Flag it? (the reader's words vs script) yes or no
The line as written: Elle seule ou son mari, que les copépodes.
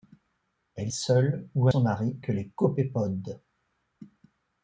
no